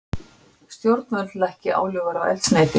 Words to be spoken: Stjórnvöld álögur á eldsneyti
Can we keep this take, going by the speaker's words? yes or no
no